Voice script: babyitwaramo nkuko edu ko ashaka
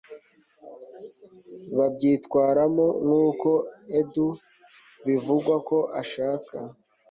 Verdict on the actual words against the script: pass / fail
fail